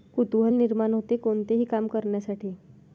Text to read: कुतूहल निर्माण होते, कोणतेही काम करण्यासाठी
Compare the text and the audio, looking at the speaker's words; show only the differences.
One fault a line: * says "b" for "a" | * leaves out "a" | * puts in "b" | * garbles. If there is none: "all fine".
all fine